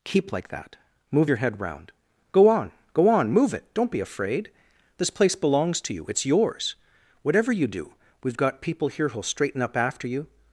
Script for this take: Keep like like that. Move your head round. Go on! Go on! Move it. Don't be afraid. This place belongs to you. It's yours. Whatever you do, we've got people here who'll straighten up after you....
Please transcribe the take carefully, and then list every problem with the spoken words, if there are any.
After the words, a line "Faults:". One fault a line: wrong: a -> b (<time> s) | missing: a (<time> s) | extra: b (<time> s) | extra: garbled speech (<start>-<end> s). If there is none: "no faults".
Keep like that. Move your head round. Go on! Go on! Move it. Don't be afraid. This place belongs to you. It's yours. Whatever you do, we've got people here who'll straighten up after you....
Faults:
missing: like (0.5 s)